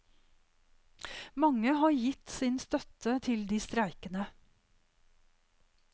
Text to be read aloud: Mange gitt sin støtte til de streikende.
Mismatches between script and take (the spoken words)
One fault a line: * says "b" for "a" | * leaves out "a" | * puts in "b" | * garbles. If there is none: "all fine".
* puts in "har"